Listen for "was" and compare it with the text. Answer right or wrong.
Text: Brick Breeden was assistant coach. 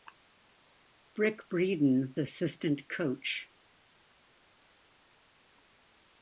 wrong